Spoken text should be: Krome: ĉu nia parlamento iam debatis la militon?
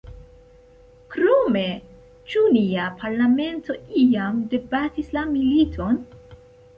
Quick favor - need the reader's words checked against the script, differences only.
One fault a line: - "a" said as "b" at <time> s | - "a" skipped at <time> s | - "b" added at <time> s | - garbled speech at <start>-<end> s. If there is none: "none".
none